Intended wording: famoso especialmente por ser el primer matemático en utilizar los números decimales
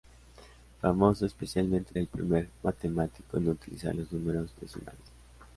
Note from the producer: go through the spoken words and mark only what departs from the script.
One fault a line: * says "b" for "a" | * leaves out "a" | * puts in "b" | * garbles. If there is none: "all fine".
* leaves out "por ser"